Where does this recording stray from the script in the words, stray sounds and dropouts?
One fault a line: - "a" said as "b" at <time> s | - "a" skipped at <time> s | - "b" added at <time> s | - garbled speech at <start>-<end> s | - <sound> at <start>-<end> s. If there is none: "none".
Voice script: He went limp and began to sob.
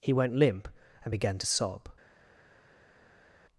none